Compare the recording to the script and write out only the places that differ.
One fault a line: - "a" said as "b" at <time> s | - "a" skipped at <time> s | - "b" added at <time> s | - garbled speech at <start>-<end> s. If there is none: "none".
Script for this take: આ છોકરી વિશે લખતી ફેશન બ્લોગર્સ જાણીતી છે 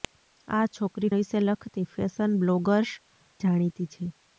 none